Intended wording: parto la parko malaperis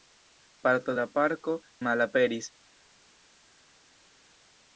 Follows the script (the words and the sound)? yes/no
yes